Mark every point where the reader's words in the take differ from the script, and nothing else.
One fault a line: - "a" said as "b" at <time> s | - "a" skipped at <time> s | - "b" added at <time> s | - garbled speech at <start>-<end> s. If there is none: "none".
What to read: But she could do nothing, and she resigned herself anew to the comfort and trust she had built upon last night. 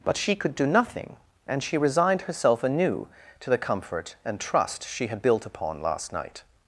none